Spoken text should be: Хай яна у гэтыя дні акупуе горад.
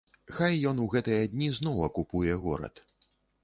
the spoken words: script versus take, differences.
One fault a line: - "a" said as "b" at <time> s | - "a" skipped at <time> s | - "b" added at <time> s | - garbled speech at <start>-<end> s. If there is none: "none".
- "яна" said as "ён" at 0.7 s
- "зноў" added at 1.6 s